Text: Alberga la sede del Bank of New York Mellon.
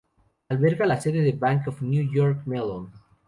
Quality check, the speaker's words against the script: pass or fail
pass